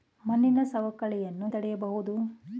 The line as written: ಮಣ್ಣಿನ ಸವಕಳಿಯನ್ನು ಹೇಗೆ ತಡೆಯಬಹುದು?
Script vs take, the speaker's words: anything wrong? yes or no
yes